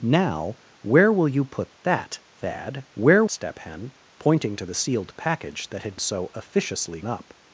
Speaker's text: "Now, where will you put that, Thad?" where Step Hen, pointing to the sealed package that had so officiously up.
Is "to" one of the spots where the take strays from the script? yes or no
no